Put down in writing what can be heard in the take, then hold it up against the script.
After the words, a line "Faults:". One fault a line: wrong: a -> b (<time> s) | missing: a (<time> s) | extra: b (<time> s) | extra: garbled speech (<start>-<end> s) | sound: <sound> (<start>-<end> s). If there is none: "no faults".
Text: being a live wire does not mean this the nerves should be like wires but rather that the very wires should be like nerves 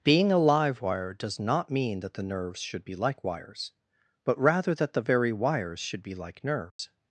being a live wire does not mean that the nerves should be like wires but rather that the very wires should be like nerves
Faults:
wrong: this -> that (2.0 s)
sound: dropout (6.7-6.8 s)